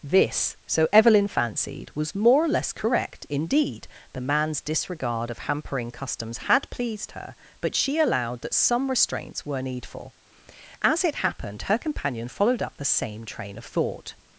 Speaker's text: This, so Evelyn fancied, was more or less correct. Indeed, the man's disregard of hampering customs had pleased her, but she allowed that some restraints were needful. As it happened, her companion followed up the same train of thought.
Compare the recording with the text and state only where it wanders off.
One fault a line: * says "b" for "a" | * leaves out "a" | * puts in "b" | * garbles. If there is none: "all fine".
all fine